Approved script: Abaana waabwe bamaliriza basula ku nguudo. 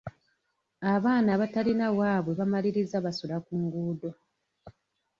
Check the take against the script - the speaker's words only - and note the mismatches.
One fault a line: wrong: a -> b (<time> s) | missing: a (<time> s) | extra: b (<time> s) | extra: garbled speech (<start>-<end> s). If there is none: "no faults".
extra: abatalina (1.4 s)